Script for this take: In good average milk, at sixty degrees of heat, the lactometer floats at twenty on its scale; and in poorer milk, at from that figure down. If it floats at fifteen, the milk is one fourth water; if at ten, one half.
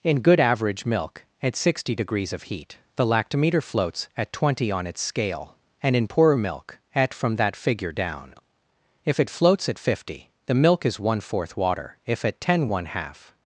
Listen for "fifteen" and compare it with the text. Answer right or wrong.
wrong